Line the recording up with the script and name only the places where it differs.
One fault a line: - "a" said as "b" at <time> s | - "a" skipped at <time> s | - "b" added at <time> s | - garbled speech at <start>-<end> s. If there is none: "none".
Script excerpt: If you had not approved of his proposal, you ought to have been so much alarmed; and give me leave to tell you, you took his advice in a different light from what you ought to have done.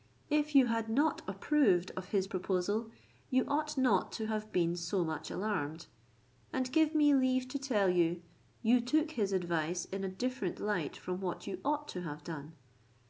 - "not" added at 3.8 s